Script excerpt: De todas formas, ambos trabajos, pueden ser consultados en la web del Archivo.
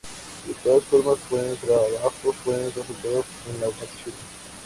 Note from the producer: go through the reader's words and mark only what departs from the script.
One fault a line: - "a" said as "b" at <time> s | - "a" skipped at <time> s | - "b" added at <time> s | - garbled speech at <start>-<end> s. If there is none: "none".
- "ambos" said as "pueden" at 1.3 s
- "ser" skipped at 2.7 s
- "web del" skipped at 3.7 s